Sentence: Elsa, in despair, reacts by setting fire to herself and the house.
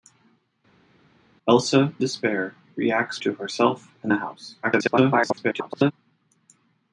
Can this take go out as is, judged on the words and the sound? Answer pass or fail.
fail